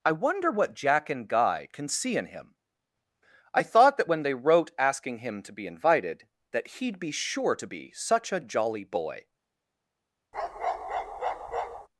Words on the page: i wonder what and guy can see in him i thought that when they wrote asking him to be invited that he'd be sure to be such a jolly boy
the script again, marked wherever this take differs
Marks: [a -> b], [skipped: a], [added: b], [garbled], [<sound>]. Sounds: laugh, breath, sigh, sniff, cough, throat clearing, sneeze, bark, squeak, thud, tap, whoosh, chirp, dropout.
i wonder what [added: jack] and guy can see in him i thought that when they wrote asking him to be invited that he'd be sure to be such a jolly boy [bark]